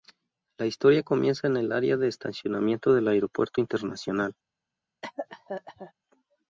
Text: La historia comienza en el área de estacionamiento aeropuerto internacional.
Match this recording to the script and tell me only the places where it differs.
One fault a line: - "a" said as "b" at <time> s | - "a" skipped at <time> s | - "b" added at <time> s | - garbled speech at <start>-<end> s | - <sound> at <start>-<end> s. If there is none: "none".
- "del" added at 3.0 s
- cough at 5.0-5.9 s